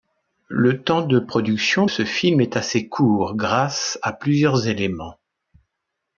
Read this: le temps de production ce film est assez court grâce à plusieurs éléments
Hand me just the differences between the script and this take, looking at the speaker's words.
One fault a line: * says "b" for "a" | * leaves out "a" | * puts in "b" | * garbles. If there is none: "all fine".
all fine